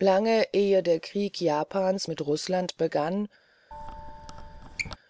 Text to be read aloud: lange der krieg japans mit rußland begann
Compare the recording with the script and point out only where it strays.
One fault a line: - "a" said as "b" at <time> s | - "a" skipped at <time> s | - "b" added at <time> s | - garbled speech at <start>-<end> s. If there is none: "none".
- "ehe" added at 0.5 s